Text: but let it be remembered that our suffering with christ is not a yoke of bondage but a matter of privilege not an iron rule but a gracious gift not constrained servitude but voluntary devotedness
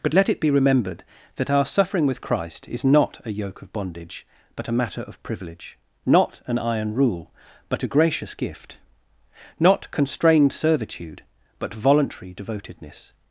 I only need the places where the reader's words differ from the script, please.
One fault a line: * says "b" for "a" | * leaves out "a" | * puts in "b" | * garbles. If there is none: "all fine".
all fine